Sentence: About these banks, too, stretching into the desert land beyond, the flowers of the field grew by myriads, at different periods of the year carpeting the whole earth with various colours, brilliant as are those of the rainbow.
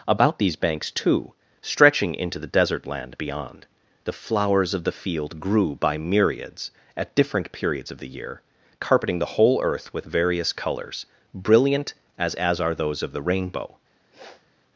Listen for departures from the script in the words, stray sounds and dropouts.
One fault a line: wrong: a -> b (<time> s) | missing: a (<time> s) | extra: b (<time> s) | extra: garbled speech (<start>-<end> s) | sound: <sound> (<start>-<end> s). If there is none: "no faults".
extra: as (12.3 s)
sound: sniff (14.1-14.5 s)